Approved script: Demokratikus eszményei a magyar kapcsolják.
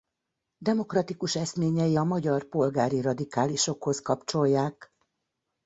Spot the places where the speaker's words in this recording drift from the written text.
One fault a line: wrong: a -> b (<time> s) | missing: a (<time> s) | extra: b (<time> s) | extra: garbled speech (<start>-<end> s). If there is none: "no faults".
extra: polgári radikálisokhoz (2.4 s)